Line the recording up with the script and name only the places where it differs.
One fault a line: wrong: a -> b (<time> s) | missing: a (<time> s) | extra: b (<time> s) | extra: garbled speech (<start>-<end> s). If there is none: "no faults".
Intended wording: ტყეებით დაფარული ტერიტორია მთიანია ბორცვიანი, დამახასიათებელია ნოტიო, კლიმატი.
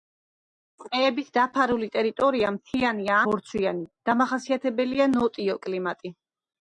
no faults